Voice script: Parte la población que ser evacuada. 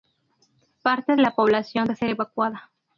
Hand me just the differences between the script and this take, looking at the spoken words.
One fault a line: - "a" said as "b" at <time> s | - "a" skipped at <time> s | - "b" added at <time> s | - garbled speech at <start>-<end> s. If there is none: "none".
none